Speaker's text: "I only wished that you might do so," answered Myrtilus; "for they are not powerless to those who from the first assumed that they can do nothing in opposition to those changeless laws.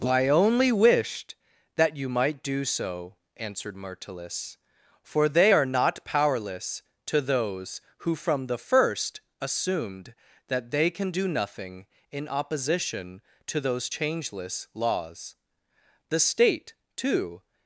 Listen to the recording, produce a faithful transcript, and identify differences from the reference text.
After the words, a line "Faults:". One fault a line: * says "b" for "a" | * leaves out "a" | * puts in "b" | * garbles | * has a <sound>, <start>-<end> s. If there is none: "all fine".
"I only wished that you might do so," answered Myrtilus; "for they are not powerless to those who from the first assumed that they can do nothing in opposition to those changeless laws. The state, too
Faults:
* puts in "The state too"